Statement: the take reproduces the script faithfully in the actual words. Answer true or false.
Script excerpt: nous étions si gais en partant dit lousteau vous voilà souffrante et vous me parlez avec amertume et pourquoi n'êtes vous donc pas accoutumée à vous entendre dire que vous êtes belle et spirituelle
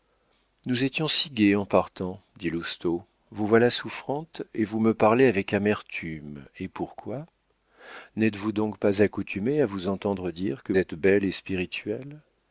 false